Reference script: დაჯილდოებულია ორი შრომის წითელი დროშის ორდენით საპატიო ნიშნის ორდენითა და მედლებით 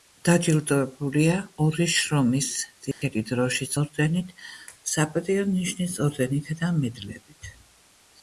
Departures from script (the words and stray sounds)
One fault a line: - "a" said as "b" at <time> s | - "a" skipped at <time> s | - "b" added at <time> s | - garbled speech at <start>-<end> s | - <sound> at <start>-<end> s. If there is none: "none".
- dropout at 2.9-3.0 s